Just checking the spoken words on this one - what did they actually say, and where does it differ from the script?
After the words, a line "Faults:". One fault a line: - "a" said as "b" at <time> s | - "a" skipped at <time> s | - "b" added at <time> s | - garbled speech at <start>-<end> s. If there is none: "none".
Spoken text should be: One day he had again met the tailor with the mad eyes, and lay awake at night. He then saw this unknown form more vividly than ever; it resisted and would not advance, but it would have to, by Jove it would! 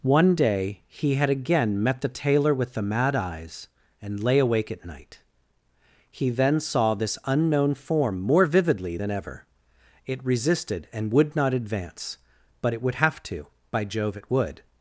One day he had again met the tailor with the mad eyes, and lay awake at night. He then saw this unknown form more vividly than ever; it resisted and would not advance, but it would have to, by Jove it would!
Faults:
none